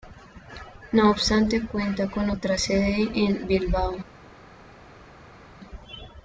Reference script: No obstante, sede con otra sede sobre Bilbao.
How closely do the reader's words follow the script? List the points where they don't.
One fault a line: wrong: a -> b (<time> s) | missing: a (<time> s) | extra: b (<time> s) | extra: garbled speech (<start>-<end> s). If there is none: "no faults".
wrong: sede -> cuenta (1.7 s)
wrong: sobre -> en (3.1 s)